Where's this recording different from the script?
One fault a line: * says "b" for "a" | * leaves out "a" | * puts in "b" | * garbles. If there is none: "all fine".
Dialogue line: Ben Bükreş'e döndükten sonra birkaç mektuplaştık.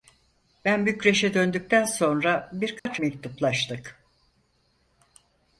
all fine